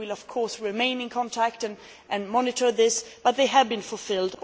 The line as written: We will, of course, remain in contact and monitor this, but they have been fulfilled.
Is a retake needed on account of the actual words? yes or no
no